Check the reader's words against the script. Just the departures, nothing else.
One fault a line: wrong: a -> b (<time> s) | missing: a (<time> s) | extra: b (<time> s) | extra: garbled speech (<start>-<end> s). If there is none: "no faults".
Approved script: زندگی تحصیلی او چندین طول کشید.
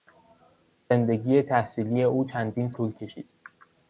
no faults